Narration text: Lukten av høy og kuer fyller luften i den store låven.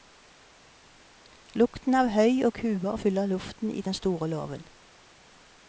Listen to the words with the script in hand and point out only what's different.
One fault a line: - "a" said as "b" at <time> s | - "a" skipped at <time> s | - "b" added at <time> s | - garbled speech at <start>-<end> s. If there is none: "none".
none